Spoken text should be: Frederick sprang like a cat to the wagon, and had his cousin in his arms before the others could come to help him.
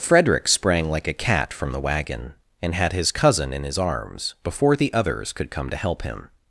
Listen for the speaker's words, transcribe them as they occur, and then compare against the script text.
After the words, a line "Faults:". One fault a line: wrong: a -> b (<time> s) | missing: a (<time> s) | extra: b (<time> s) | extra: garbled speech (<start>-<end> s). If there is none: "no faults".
Frederick sprang like a cat from the wagon, and had his cousin in his arms before the others could come to help him.
Faults:
wrong: to -> from (1.5 s)